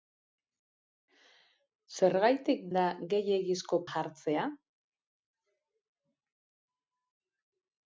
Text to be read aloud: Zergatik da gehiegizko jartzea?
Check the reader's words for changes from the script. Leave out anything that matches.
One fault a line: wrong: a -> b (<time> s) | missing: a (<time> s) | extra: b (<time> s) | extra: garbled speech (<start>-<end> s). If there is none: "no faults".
no faults